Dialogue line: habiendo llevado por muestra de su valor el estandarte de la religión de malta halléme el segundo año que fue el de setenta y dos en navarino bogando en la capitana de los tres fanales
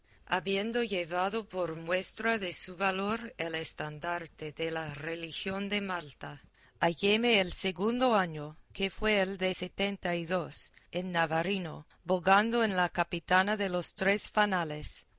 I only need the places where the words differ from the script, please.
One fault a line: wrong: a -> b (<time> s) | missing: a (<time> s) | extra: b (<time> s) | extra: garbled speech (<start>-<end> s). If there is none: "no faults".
no faults